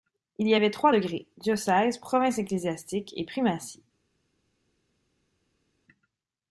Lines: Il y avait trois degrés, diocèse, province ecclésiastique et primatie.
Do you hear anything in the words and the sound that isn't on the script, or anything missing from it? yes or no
no